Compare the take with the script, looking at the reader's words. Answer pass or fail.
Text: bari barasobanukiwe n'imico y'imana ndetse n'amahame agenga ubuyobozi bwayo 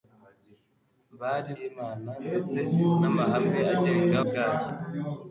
fail